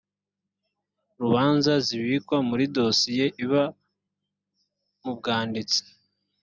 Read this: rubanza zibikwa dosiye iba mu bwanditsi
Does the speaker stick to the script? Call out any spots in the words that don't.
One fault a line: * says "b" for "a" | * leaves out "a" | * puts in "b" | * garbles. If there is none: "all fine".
* puts in "muri"